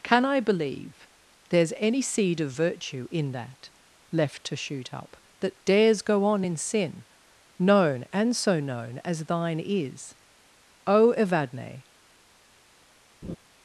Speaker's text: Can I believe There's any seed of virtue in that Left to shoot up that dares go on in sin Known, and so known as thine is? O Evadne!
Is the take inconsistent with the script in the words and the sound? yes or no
yes